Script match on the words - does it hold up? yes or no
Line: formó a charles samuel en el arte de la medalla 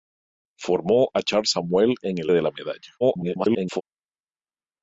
no